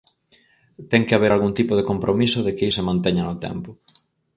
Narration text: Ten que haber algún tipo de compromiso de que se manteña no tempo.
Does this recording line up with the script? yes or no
yes